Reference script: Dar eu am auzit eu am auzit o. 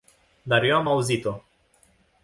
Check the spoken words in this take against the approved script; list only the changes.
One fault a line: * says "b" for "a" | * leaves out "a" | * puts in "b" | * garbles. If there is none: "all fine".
* leaves out "eu am auzit"